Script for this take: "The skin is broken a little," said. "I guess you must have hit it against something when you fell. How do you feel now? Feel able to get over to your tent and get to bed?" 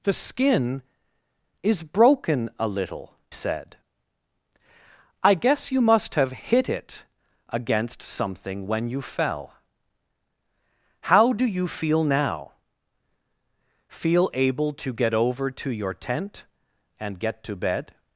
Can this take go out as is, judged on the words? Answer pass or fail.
pass